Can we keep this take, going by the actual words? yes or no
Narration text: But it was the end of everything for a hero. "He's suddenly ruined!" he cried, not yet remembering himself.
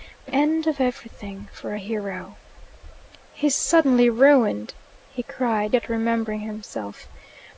no